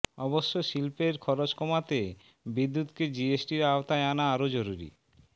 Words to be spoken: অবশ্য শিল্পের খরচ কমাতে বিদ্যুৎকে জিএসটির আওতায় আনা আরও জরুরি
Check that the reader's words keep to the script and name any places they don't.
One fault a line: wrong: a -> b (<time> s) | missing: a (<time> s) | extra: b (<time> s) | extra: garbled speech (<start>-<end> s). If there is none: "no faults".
no faults